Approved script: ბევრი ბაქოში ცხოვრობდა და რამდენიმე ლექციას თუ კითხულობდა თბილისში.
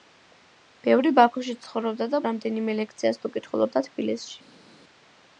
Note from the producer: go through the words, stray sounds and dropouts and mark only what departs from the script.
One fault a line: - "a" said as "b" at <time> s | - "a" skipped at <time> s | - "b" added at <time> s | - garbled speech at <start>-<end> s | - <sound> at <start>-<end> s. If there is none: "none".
none